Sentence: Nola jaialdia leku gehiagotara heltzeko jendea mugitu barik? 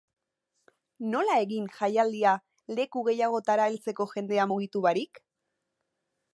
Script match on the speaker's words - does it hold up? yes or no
no